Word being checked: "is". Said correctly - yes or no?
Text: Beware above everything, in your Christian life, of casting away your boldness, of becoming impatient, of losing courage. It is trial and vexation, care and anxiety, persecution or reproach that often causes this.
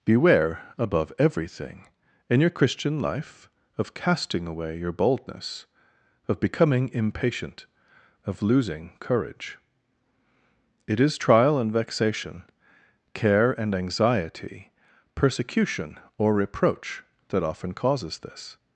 yes